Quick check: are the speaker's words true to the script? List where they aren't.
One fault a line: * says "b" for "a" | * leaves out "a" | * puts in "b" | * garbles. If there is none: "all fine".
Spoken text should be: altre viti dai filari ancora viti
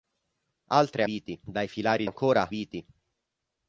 all fine